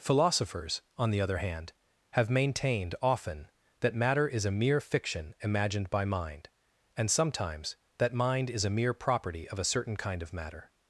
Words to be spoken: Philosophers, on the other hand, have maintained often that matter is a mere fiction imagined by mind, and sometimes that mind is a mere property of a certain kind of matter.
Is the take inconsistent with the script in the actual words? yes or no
no